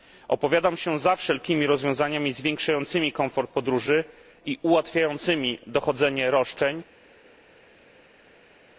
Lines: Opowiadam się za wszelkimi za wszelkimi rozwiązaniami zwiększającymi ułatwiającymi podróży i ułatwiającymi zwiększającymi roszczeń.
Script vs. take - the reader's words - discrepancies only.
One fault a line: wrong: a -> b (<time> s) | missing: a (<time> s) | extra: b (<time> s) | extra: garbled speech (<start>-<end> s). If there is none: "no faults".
missing: za wszelkimi (1.7 s)
wrong: ułatwiającymi -> komfort (3.1 s)
wrong: zwiększającymi -> dochodzenie (5.7 s)